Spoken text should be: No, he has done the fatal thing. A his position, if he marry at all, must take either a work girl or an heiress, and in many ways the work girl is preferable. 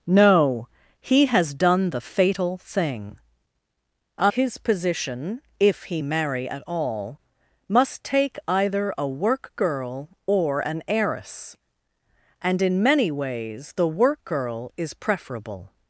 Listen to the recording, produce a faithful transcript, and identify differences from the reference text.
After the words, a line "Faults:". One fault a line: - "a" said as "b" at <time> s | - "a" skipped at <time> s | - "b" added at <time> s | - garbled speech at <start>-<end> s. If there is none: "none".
No, he has done the fatal thing. A his position, if he marry at all, must take either a work girl or an heiress, and in many ways the work girl is preferable.
Faults:
none